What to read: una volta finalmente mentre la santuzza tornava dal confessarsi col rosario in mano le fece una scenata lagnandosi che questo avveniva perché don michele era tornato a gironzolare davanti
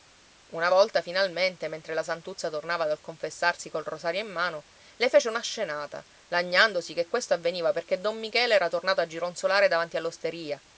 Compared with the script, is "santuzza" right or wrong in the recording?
right